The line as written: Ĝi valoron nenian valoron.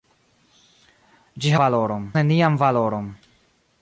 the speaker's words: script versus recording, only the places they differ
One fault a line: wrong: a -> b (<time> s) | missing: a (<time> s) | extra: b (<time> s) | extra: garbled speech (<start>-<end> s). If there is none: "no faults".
no faults